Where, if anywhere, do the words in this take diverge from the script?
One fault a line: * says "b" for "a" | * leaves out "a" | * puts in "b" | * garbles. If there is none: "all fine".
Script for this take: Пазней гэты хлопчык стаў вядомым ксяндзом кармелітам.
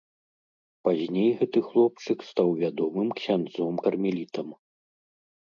all fine